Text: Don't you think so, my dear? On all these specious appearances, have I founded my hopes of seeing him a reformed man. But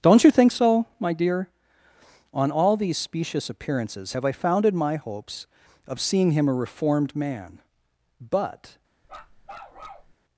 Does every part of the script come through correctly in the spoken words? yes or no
yes